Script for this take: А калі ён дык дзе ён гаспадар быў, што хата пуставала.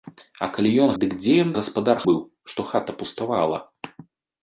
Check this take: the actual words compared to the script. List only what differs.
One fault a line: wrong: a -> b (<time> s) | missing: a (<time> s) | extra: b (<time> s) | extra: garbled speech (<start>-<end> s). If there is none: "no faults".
no faults